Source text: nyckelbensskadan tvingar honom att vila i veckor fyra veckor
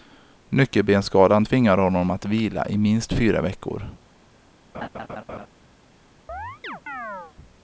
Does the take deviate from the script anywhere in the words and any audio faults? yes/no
yes